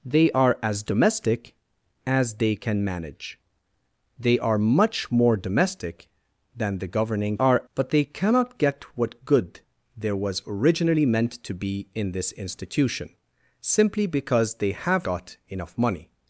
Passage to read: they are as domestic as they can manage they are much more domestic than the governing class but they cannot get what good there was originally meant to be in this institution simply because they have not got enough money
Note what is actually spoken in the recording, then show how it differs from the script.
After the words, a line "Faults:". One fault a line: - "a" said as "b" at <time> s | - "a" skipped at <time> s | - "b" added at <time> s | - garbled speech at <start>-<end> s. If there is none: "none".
they are as domestic as they can manage they are much more domestic than the governing are but they cannot get what good there was originally meant to be in this institution simply because they have got enough money
Faults:
- "class" said as "are" at 7.4 s
- "not" skipped at 15.1 s